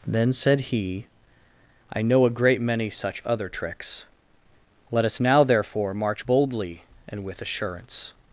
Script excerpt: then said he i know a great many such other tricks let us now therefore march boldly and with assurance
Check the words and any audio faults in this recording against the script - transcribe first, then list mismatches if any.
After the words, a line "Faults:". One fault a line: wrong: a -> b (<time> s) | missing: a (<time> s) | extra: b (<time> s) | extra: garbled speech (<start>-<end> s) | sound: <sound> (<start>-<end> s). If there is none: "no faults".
then said he i know a great many such other tricks let us now therefore march boldly and with assurance
Faults:
no faults